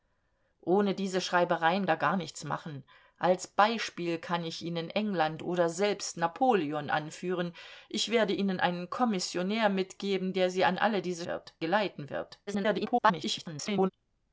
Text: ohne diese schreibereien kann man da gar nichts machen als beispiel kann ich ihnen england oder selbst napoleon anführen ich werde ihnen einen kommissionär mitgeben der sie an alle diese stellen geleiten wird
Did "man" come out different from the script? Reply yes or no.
yes